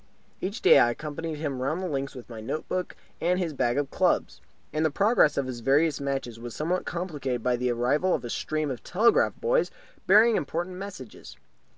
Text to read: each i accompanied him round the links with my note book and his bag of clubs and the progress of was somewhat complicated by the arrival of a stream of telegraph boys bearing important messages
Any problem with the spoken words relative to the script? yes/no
yes